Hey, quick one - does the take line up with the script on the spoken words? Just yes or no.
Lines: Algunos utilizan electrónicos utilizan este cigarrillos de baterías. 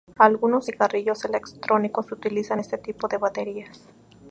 no